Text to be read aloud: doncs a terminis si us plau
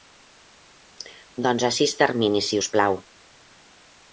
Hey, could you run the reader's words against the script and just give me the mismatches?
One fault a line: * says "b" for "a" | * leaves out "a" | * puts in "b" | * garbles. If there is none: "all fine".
* puts in "sis"